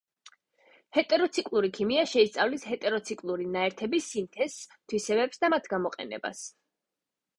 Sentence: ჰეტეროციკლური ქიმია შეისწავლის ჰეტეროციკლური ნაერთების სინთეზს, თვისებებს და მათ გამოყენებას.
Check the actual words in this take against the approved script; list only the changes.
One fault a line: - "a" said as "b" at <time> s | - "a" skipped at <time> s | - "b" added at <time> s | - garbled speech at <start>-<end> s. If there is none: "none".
none